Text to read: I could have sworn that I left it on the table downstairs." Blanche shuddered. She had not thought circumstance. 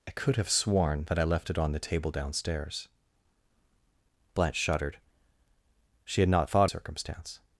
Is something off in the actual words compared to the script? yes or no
no